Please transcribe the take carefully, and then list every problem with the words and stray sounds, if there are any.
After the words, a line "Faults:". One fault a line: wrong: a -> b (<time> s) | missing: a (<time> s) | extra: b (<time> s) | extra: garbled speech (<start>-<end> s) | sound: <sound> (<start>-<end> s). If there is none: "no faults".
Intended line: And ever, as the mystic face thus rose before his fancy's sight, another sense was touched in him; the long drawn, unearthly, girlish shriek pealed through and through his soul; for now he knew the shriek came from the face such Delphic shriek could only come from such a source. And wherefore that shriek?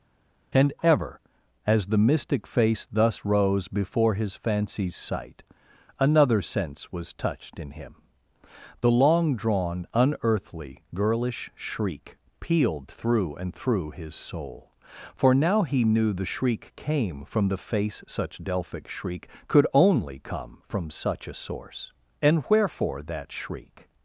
And ever, as the mystic face thus rose before his fancy's sight, another sense was touched in him; the long drawn, unearthly, girlish shriek pealed through and through his soul; for now he knew the shriek came from the face such Delphic shriek could only come from such a source. And wherefore that shriek?
Faults:
no faults